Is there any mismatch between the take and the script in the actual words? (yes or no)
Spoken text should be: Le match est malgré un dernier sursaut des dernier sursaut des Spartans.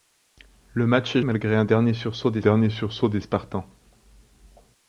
no